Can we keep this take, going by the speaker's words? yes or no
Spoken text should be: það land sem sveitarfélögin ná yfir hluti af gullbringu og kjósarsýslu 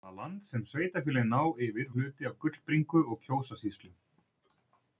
yes